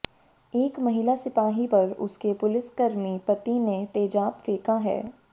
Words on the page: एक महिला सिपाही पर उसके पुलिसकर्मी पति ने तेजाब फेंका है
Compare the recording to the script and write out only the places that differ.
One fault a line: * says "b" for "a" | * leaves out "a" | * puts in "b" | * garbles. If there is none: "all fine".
all fine